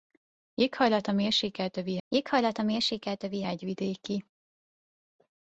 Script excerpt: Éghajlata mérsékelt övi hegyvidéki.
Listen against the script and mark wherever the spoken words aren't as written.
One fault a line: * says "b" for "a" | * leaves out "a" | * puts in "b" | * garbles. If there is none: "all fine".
* puts in "éghajlata mérsékelt övi"